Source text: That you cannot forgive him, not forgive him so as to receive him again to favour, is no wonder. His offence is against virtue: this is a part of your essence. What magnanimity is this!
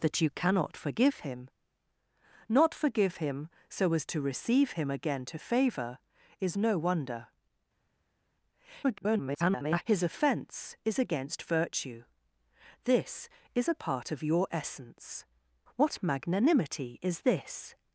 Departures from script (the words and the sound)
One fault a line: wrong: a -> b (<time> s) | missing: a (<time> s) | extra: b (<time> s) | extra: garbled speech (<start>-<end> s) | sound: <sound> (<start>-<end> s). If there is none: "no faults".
extra: garbled speech (8.8-9.8 s)